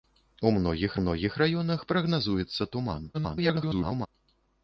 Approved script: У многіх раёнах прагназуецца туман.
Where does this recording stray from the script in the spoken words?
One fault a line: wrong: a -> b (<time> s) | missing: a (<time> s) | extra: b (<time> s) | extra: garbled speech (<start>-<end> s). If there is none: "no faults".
extra: многіх (1.0 s)
extra: garbled speech (3.1-4.1 s)